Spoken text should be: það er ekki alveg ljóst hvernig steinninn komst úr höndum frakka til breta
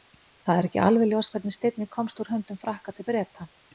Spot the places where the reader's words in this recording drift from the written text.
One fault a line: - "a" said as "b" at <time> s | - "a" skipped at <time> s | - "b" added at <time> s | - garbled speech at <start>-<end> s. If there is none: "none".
none